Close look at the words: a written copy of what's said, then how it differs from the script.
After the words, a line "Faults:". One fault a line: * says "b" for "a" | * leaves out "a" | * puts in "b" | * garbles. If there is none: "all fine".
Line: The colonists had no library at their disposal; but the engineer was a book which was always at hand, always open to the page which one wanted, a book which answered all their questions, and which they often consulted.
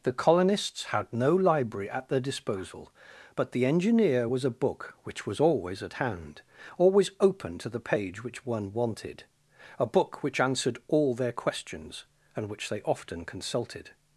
The colonists had no library at their disposal; but the engineer was a book which was always at hand, always open to the page which one wanted, a book which answered all their questions, and which they often consulted.
Faults:
all fine